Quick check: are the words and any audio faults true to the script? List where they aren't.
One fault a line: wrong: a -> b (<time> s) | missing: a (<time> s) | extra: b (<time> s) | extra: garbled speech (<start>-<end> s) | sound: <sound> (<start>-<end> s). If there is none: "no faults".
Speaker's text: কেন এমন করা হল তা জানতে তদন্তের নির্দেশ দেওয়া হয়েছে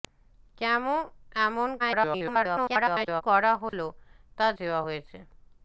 extra: garbled speech (1.8-3.2 s)
sound: dropout (3.7-3.7 s)
missing: জানতে তদন্তের নির্দেশ (4.5 s)